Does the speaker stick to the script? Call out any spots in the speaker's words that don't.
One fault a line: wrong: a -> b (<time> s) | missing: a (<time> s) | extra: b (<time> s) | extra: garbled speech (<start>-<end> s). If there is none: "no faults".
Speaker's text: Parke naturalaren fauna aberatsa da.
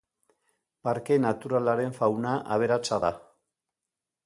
no faults